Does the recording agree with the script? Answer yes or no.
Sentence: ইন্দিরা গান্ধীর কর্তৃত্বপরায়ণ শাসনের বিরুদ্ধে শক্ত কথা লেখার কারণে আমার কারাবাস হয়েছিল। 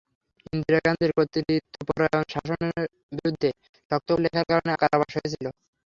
no